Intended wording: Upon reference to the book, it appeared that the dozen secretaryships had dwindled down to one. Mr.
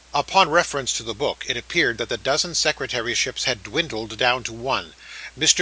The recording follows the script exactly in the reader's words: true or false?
true